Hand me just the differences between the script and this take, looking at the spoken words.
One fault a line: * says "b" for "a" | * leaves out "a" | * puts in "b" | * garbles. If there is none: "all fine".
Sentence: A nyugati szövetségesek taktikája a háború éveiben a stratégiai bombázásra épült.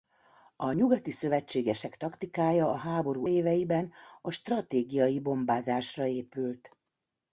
all fine